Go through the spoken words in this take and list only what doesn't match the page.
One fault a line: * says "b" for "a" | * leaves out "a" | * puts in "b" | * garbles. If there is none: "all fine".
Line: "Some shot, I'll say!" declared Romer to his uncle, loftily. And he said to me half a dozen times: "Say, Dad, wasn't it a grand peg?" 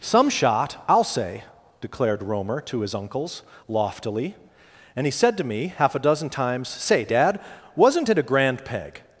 * says "uncles" for "uncle"